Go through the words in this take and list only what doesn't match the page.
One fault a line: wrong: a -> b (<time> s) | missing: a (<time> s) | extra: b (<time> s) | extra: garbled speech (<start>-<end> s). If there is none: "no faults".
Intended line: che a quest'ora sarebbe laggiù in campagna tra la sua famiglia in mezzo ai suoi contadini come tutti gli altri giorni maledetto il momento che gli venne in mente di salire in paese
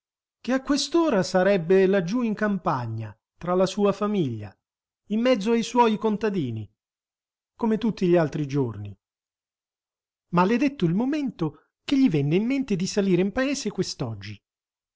no faults